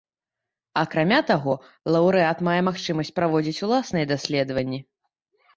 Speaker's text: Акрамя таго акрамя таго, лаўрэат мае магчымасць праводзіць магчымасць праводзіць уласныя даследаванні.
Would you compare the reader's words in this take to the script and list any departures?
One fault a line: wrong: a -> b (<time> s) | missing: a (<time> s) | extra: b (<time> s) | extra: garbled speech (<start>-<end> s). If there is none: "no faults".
missing: акрамя таго (1.5 s)
missing: магчымасць праводзіць (3.6 s)